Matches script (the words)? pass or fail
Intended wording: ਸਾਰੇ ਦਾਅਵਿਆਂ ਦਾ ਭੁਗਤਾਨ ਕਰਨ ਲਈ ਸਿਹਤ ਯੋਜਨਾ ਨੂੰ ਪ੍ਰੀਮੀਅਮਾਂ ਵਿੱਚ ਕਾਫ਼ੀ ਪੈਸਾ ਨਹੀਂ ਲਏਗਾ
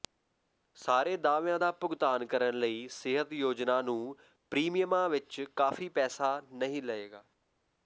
pass